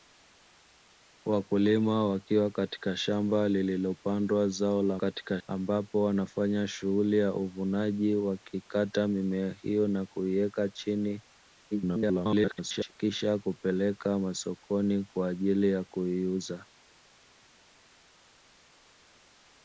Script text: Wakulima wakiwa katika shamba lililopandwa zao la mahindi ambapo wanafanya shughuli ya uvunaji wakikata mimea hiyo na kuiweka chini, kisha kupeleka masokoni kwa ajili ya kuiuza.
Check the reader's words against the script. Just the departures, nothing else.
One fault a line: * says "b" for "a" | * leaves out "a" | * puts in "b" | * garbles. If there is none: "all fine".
* says "katika" for "mahindi"
* garbles